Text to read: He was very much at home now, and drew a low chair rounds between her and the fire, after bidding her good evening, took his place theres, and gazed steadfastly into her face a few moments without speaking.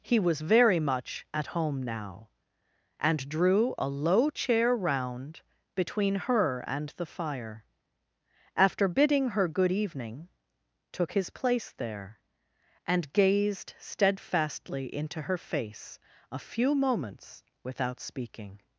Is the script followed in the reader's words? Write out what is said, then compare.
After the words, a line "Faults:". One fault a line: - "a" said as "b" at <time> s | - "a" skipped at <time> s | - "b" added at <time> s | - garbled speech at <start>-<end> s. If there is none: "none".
He was very much at home now, and drew a low chair round between her and the fire, after bidding her good evening, took his place there, and gazed steadfastly into her face a few moments without speaking.
Faults:
- "rounds" said as "round" at 4.8 s
- "theres" said as "there" at 11.8 s